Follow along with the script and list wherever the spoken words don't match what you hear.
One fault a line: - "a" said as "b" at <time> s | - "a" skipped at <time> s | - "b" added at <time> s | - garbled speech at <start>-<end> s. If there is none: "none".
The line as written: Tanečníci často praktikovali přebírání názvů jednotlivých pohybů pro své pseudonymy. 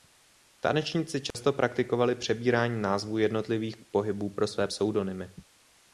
none